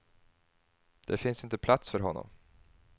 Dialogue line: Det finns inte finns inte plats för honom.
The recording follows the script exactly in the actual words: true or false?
false